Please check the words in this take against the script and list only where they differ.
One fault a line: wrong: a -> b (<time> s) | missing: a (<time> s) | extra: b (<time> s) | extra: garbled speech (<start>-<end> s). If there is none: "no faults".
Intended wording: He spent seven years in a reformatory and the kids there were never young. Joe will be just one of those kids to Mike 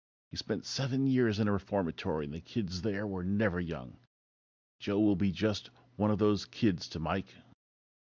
no faults